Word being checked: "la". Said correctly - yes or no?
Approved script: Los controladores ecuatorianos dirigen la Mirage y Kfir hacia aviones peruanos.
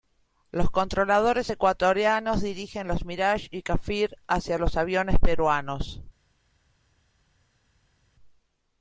no